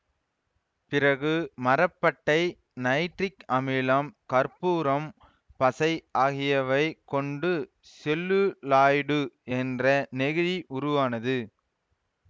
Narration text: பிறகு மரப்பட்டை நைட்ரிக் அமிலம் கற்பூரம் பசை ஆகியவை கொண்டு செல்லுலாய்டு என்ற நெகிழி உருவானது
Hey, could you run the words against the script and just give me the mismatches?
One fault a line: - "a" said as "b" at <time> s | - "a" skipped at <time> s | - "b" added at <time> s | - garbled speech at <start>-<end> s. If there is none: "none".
none